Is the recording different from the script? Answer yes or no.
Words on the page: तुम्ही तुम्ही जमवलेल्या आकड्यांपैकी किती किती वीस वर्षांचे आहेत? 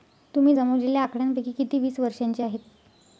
yes